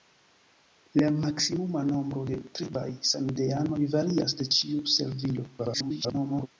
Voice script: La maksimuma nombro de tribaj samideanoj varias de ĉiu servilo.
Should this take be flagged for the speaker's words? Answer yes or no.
yes